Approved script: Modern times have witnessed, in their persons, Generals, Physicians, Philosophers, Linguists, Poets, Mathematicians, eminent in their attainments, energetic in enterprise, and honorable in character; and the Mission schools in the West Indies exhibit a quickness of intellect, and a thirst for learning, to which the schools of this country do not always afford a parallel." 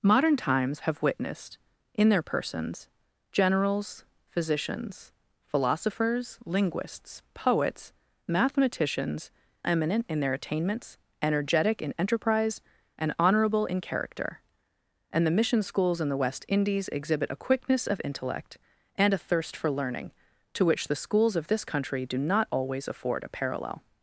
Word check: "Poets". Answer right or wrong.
right